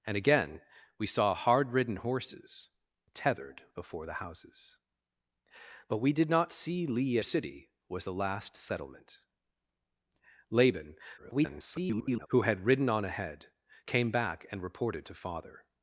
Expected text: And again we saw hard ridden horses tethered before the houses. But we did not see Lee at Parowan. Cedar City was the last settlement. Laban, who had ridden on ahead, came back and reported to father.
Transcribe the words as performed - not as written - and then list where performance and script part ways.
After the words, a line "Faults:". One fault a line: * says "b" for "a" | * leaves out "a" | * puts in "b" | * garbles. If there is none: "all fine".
And again we saw hard ridden horses tethered before the houses. But we did not see Lee City was the last settlement. Laban, [garbled] who had ridden on ahead, came back and reported to father.
Faults:
* leaves out "at Parowan Cedar"
* garbles